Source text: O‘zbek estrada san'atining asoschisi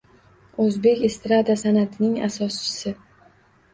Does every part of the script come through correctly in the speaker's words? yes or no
yes